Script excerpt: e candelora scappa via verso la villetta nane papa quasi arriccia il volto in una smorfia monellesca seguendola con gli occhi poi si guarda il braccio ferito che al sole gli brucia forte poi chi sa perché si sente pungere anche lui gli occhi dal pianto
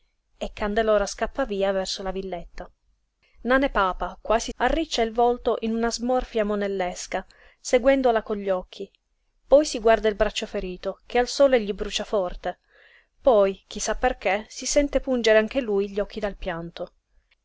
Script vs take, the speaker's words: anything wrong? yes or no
no